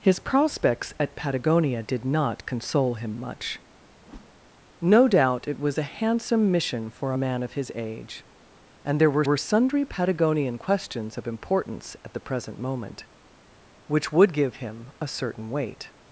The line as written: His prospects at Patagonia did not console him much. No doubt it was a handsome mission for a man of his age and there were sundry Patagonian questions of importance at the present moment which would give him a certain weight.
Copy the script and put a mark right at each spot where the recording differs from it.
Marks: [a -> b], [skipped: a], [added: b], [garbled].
His prospects at Patagonia did not console him much. No doubt it was a handsome mission for a man of his age and there were [added: were] sundry Patagonian questions of importance at the present moment which would give him a certain weight.